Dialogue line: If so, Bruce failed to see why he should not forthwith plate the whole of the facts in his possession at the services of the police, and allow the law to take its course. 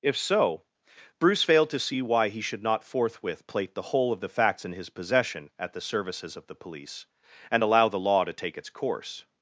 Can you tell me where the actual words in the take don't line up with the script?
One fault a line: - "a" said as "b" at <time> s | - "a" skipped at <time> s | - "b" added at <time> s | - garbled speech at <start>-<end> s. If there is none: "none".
none